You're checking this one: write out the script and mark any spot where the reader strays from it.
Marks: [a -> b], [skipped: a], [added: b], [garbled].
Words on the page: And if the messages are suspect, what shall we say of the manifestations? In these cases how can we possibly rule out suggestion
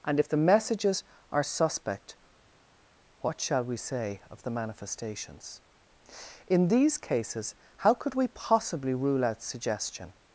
And if the messages are suspect, what shall we say of the manifestations? In these cases how [can -> could] we possibly rule out suggestion